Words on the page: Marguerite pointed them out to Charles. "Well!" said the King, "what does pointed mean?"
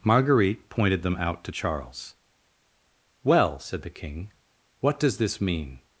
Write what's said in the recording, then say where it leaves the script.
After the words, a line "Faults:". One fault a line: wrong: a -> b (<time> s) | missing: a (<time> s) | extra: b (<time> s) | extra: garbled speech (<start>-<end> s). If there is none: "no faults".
Marguerite pointed them out to Charles. "Well!" said the King, "what does this mean?"
Faults:
wrong: pointed -> this (5.2 s)